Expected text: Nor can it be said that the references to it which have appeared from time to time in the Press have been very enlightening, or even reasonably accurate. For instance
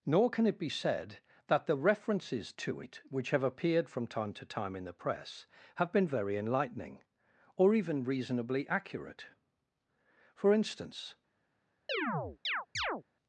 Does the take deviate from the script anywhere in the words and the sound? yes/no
yes